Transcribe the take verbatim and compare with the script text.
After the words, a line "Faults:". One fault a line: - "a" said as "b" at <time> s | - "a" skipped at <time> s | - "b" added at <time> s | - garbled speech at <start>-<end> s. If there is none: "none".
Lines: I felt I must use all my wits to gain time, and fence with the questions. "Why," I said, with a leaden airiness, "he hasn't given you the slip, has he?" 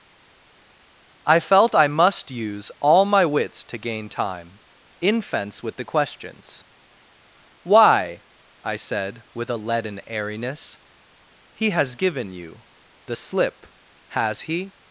I felt I must use all my wits to gain time, in fence with the questions. "Why," I said, with a leaden airiness, "he has given you the slip, has he?"
Faults:
- "and" said as "in" at 5.0 s
- "hasn't" said as "has" at 11.7 s